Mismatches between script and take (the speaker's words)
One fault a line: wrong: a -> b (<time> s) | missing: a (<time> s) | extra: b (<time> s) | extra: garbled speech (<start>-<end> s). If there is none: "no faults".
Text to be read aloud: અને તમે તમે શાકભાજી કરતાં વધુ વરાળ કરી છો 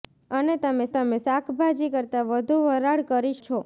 no faults